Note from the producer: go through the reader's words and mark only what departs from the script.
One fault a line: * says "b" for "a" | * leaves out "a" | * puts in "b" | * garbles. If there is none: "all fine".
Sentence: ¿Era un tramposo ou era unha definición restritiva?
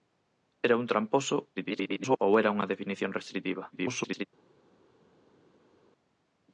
* garbles
* garbles